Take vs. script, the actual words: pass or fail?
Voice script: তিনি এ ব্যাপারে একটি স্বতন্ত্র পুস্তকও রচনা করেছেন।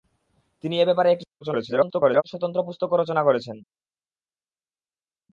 fail